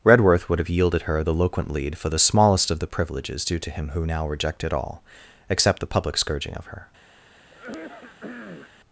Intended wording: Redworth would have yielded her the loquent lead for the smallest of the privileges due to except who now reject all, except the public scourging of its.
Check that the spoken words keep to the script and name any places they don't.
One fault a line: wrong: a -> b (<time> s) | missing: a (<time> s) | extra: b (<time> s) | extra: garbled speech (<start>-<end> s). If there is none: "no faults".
wrong: except -> him (3.7 s)
wrong: reject -> rejected (4.3 s)
wrong: its -> her (6.7 s)